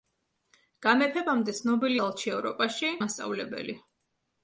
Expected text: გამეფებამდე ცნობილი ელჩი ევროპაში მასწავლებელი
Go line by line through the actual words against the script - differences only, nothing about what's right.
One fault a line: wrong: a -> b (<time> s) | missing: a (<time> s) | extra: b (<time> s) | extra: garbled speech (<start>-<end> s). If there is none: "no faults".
no faults